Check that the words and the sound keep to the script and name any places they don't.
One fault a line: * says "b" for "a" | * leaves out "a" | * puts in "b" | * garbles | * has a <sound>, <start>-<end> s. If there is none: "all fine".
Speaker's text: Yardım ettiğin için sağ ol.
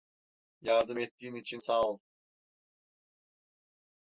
all fine